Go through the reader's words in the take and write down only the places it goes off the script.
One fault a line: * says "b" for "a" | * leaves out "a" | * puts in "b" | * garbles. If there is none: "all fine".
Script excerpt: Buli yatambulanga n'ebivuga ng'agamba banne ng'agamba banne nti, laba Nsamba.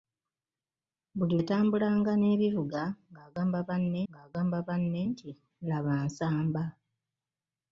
all fine